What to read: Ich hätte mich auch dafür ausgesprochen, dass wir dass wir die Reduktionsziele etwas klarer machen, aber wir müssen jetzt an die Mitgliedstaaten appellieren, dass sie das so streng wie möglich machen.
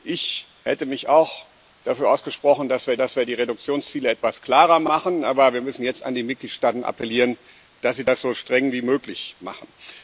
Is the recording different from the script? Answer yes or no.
no